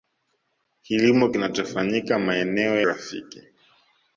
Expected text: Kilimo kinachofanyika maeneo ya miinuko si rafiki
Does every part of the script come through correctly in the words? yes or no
no